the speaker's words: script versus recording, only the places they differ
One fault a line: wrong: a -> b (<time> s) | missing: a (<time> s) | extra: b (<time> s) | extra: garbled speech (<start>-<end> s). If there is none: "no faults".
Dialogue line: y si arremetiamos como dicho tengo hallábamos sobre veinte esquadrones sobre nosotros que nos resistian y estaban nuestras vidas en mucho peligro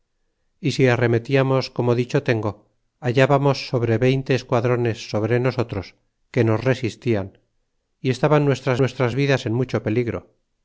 extra: nuestras (8.8 s)